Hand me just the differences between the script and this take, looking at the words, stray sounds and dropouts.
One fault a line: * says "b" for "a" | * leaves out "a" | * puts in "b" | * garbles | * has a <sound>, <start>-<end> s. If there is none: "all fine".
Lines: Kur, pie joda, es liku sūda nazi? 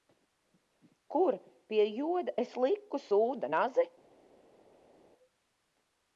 all fine